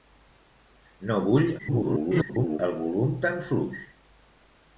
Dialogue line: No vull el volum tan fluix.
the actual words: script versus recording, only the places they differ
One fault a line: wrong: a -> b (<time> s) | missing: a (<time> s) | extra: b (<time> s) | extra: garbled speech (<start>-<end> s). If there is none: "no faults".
extra: garbled speech (1.6-2.6 s)